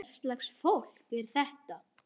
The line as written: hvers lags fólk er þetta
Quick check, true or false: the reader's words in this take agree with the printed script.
true